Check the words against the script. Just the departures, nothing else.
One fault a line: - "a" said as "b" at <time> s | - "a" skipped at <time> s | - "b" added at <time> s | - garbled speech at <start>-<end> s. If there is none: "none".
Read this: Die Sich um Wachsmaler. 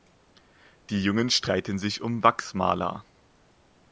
- "Jungen streiten" added at 1.0 s